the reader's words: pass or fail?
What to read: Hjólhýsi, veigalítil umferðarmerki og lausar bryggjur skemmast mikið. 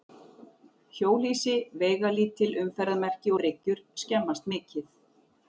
fail